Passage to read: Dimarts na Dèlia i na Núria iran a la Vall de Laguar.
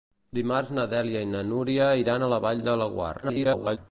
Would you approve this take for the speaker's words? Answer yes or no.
no